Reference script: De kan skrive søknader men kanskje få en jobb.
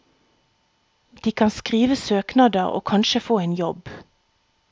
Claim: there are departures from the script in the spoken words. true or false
true